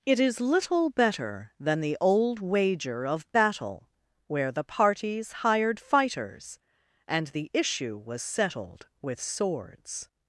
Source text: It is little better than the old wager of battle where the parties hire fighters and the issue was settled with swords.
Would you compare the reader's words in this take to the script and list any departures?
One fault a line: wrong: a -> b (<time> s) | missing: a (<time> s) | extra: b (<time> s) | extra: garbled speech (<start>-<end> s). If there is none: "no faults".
wrong: hire -> hired (5.4 s)